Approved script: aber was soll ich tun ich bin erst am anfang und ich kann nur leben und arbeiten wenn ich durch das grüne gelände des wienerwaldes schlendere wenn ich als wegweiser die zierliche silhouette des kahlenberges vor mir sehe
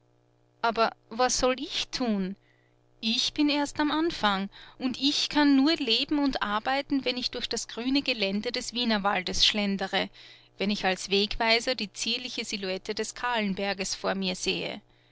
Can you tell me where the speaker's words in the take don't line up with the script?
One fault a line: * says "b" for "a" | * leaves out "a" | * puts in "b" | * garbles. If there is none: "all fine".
all fine